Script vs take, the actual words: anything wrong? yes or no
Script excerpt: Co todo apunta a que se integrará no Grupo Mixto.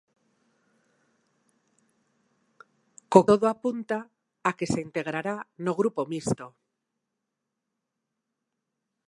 no